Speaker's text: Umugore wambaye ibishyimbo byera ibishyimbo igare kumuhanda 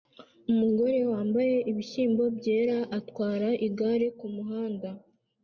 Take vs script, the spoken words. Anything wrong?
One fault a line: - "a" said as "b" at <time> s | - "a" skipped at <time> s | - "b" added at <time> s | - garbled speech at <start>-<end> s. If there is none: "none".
- "ibishyimbo" said as "atwara" at 3.0 s